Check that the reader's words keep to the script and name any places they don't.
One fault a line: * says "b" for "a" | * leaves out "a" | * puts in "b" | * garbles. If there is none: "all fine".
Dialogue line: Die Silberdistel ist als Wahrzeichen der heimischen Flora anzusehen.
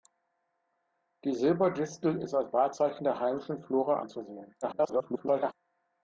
* garbles